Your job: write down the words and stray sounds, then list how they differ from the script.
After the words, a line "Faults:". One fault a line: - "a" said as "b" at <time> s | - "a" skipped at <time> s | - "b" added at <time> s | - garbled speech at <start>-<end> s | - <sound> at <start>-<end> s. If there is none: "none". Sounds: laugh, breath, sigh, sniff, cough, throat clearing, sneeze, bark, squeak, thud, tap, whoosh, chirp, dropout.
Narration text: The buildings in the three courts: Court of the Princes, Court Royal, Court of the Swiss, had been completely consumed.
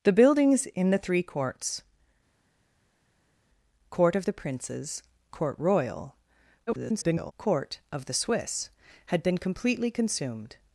The buildings in the three courts: Court of the Princes, Court Royal, [garbled] Court of the Swiss, had been completely consumed.
Faults:
- garbled speech at 6.7-7.3 s